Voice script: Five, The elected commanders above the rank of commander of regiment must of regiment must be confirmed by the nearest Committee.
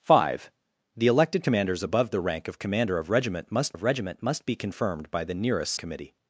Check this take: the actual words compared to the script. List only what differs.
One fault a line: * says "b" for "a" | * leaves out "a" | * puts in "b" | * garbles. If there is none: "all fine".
all fine